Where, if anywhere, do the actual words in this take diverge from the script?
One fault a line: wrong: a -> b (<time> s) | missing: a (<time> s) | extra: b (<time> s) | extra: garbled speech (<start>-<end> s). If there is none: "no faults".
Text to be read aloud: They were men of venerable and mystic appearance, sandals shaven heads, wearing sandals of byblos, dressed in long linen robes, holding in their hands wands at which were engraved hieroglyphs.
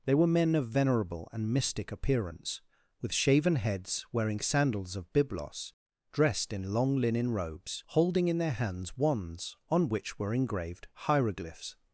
wrong: sandals -> with (3.0 s)
wrong: at -> on (9.7 s)